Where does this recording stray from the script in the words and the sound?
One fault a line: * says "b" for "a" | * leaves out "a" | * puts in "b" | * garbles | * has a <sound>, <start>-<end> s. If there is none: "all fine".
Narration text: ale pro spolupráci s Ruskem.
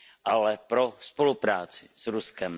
all fine